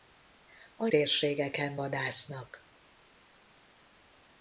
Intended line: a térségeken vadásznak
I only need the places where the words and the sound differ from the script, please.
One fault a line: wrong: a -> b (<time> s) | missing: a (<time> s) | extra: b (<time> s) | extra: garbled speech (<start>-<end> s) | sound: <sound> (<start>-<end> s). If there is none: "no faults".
no faults